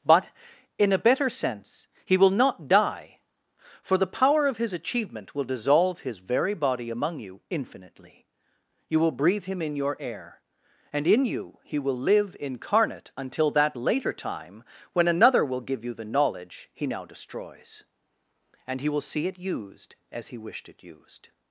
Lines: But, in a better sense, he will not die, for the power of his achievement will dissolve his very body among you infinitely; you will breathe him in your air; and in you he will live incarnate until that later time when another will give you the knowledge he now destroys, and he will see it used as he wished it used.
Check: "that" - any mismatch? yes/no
no